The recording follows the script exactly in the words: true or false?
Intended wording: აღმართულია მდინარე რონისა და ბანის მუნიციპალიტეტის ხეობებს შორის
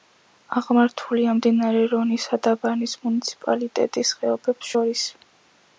true